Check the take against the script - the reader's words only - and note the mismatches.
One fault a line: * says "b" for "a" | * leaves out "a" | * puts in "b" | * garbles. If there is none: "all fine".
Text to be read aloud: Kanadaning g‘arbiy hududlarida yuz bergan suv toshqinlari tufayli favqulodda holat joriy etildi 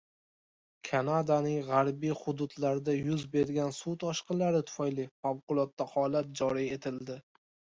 all fine